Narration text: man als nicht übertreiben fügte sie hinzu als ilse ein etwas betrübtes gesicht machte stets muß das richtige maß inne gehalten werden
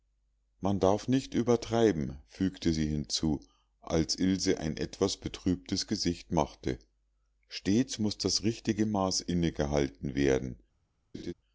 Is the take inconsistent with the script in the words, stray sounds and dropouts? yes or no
yes